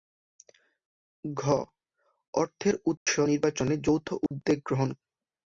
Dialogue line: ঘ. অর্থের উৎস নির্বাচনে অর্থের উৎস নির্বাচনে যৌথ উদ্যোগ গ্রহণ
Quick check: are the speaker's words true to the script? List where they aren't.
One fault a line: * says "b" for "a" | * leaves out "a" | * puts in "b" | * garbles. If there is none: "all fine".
* leaves out "অর্থের উৎস নির্বাচনে"